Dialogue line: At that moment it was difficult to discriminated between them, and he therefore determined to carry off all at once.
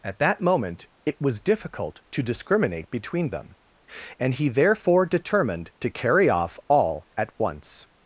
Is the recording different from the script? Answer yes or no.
yes